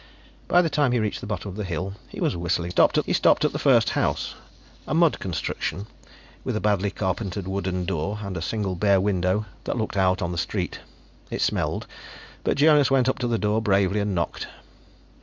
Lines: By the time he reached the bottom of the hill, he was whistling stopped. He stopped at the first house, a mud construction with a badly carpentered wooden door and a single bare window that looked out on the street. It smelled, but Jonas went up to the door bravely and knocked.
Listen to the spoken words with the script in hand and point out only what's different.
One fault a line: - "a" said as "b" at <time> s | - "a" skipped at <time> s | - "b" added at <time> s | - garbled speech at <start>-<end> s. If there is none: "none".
none